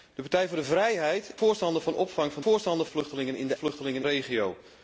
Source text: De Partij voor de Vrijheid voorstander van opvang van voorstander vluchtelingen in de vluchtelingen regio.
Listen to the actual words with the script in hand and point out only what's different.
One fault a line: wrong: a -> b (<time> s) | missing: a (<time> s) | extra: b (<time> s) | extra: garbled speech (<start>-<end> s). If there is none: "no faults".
no faults